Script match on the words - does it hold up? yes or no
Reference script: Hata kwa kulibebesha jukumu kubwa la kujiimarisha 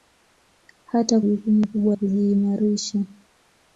no